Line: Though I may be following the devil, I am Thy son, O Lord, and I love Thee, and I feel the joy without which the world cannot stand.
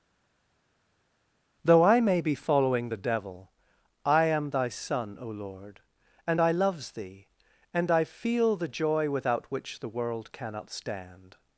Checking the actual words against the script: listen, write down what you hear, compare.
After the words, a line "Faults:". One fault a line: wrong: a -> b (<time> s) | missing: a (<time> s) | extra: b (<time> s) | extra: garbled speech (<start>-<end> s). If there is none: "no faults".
Though I may be following the devil, I am Thy son, O Lord, and I loves Thee, and I feel the joy without which the world cannot stand.
Faults:
wrong: love -> loves (6.5 s)